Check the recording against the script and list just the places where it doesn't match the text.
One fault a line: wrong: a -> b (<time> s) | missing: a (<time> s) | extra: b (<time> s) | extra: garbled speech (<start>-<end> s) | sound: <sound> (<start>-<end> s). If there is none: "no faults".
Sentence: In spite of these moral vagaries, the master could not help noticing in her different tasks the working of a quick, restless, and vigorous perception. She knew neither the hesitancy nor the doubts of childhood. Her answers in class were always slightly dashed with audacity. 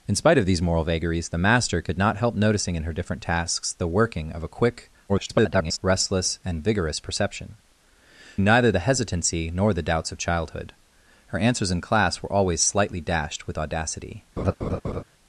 extra: garbled speech (5.1-5.8 s)
missing: She knew (7.6 s)
sound: laugh (14.4-15.0 s)